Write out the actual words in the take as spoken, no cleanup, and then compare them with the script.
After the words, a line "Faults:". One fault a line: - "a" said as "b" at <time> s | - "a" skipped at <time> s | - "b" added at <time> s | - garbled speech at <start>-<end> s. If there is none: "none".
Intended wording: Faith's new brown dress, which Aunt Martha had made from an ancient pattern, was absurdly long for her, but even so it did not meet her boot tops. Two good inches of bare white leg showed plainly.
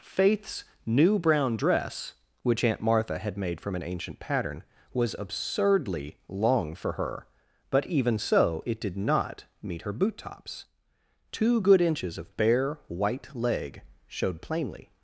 Faith's new brown dress, which Aunt Martha had made from an ancient pattern, was absurdly long for her, but even so it did not meet her boot tops. Two good inches of bare white leg showed plainly.
Faults:
none